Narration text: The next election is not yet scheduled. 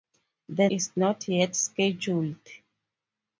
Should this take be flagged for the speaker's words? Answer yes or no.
yes